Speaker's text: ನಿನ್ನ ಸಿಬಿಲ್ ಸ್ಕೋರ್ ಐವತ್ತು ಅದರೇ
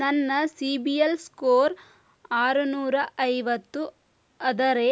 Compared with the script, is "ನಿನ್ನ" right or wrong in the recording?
wrong